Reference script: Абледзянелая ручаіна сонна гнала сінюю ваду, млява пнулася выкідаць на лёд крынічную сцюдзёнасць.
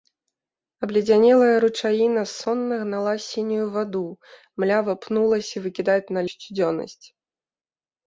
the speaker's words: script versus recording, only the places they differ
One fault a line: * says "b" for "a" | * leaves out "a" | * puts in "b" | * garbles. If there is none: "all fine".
* leaves out "лёд крынічную"